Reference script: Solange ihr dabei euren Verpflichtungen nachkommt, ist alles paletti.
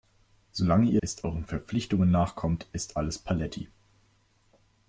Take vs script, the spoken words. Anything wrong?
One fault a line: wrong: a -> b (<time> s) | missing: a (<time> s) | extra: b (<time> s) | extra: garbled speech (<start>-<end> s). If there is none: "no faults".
wrong: dabei -> ist (1.0 s)